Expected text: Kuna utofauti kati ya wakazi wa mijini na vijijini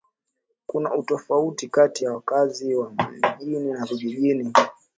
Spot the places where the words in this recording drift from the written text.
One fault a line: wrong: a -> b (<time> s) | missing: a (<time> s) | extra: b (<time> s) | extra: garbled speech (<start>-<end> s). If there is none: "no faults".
no faults